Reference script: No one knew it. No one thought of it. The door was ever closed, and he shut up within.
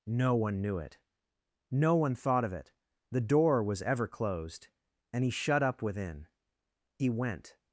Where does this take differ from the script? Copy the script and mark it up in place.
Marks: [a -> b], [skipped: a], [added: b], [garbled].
No one knew it. No one thought of it. The door was ever closed, and he shut up within. [added: He went]